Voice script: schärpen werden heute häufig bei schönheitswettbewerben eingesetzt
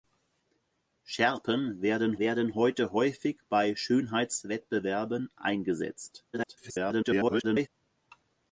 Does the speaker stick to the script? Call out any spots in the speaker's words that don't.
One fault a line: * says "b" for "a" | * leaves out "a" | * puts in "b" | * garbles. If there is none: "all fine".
* puts in "werden"
* garbles